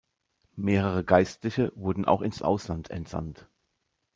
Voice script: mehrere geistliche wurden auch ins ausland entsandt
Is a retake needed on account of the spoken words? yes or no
no